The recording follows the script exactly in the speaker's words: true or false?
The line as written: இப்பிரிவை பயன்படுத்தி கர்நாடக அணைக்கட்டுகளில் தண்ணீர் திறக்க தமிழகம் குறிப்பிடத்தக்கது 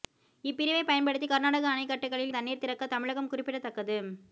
true